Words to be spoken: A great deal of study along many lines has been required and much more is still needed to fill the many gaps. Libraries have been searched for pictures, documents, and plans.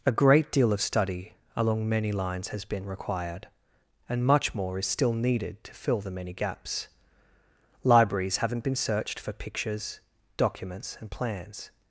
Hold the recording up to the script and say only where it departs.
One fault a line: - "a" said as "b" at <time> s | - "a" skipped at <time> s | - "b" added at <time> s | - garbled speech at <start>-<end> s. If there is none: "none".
- "have" said as "haven't" at 8.4 s